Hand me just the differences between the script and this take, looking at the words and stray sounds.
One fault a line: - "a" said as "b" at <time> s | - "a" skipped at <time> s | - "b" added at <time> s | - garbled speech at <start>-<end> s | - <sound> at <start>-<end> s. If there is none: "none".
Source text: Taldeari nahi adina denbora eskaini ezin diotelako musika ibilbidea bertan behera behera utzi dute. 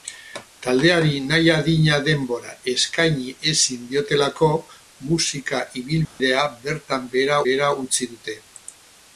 - dropout at 6.0-6.2 s